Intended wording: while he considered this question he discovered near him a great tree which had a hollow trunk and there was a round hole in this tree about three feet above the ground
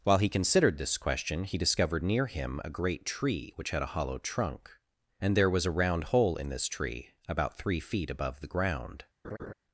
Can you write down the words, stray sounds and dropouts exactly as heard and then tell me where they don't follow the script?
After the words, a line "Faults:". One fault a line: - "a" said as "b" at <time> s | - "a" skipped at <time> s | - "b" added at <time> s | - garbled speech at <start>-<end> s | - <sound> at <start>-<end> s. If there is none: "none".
while he considered this question he discovered near him a great tree which had a hollow trunk and there was a round hole in this tree about three feet above the ground
Faults:
- laugh at 9.2-9.5 s